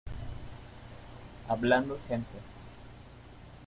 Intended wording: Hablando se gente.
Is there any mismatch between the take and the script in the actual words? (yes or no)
no